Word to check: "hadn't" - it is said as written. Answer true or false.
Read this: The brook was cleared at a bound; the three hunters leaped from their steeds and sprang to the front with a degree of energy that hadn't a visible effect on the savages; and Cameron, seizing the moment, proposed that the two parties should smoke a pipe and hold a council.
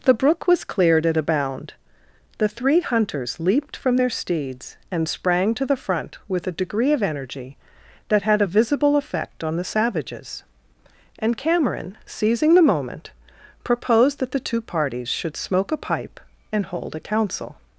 false